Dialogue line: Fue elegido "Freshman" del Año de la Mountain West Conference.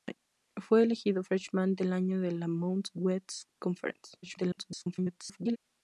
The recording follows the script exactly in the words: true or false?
false